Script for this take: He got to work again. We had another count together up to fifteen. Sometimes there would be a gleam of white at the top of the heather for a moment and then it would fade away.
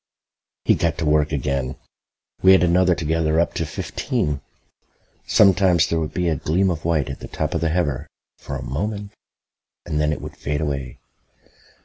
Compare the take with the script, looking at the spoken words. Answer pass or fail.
fail